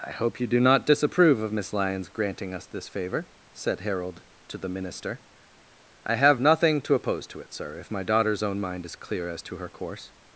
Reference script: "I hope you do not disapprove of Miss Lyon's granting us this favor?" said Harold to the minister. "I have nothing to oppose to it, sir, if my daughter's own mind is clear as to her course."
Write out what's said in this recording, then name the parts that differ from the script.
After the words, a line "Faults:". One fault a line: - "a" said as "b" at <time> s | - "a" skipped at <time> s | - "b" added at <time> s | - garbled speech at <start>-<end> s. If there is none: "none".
"I hope you do not disapprove of Miss Lyon's granting us this favor?" said Harold to the minister. "I have nothing to oppose to it, sir, if my daughter's own mind is clear as to her course."
Faults:
none